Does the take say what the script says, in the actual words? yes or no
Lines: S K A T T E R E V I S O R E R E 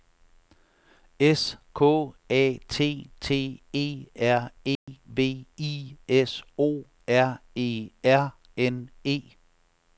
no